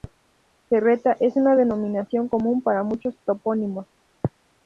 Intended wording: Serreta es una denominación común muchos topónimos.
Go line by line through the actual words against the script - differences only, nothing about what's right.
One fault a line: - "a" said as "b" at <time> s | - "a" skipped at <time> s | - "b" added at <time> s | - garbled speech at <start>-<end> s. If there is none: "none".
- "para" added at 2.6 s